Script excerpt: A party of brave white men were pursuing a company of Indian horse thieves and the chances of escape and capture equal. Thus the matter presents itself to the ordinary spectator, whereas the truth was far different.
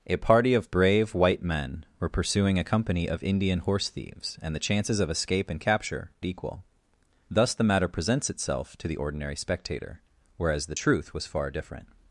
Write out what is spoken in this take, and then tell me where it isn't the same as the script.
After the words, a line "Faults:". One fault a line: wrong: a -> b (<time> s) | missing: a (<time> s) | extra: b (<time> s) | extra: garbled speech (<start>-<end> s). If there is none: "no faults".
A party of brave white men were pursuing a company of Indian horse thieves and the chances of escape and capture equal. Thus the matter presents itself to the ordinary spectator, whereas the truth was far different.
Faults:
no faults